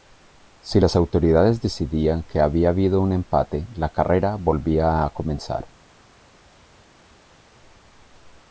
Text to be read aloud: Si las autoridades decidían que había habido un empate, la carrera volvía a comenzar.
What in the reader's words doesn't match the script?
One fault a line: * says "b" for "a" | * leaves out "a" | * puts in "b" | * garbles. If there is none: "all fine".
all fine